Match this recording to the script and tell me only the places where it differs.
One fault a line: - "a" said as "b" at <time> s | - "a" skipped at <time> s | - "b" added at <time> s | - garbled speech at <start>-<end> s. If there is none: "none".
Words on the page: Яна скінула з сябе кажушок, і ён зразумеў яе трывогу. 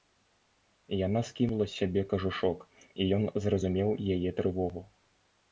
none